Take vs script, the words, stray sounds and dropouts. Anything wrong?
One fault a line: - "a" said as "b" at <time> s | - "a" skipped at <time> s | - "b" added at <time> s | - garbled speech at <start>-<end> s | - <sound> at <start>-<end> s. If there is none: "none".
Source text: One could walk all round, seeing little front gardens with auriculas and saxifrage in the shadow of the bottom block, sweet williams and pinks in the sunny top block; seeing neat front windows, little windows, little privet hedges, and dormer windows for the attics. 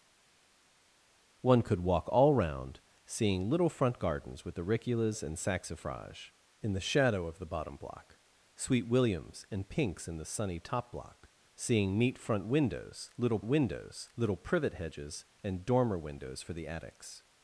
none